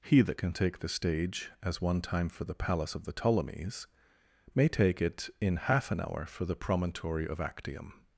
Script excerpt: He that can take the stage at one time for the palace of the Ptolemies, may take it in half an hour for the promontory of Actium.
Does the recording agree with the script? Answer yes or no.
no